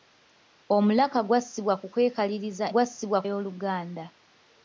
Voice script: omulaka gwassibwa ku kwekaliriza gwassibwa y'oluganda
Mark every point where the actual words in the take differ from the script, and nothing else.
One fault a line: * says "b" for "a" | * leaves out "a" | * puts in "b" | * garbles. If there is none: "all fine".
all fine